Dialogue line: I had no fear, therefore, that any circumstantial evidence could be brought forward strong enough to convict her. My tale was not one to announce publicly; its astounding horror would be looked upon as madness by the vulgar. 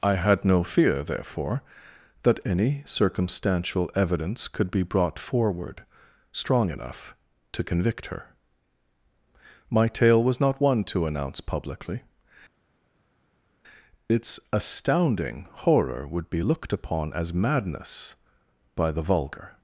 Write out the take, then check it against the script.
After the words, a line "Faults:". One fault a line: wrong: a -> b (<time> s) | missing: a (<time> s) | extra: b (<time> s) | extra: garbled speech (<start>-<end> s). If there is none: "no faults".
I had no fear, therefore, that any circumstantial evidence could be brought forward strong enough to convict her. My tale was not one to announce publicly; its astounding horror would be looked upon as madness by the vulgar.
Faults:
no faults